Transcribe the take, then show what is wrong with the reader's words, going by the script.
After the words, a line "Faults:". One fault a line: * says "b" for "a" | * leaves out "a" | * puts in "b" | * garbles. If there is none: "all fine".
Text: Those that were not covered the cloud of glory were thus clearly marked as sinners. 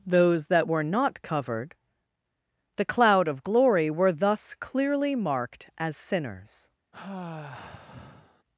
Those that were not covered the cloud of glory were thus clearly marked as sinners.
Faults:
all fine